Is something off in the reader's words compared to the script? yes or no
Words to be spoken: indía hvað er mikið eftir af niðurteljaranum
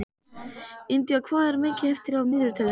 no